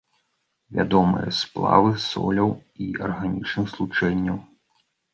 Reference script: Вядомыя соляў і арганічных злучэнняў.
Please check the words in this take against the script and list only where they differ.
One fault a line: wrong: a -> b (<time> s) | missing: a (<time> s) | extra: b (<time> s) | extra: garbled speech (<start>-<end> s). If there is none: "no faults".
extra: сплавы (1.4 s)